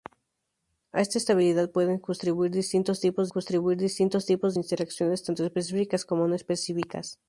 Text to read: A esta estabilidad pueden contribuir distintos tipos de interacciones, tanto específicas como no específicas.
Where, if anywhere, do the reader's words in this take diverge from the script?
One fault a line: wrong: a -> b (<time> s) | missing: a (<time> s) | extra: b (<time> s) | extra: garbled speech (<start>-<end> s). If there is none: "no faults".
extra: contribuir distintos tipos (3.3 s)